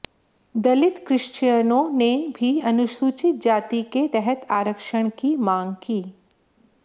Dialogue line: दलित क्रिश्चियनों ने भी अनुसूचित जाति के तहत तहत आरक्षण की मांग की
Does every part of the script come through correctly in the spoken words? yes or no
no